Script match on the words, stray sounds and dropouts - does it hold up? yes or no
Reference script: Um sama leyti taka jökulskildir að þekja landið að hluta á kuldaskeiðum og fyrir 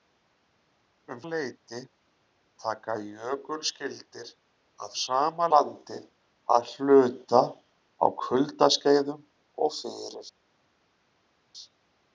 no